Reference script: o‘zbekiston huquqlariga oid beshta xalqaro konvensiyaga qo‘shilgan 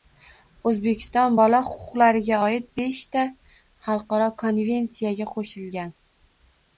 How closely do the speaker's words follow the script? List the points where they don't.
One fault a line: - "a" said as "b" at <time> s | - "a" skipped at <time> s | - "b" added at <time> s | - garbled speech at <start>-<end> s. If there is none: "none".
- "bola" added at 1.4 s